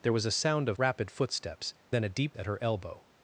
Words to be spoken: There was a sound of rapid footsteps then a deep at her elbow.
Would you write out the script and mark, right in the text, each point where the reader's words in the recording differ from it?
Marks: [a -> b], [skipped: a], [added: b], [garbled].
There was a sound of rapid footsteps then a deep at her elbow.